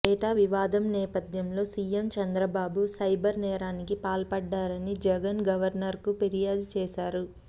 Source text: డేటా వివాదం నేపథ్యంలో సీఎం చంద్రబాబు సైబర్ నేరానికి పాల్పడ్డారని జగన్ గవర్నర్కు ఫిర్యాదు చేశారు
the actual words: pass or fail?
pass